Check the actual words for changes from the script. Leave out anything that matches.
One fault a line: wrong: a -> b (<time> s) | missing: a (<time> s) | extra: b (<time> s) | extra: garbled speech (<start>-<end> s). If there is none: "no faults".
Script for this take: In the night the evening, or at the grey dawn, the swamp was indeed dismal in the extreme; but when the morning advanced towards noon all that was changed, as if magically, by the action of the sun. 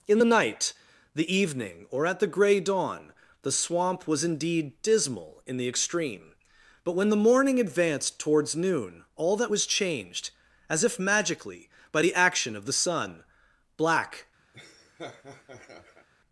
extra: Black (13.8 s)